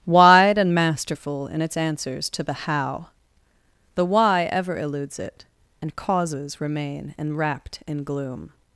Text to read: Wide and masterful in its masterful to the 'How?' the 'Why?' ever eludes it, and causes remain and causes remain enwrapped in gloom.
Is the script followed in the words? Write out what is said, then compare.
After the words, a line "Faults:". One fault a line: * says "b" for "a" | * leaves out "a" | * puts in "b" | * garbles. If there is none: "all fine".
Wide and masterful in its answers to the 'How?' the 'Why?' ever eludes it, and causes remain enwrapped in gloom.
Faults:
* says "answers" for "masterful"
* leaves out "and causes remain"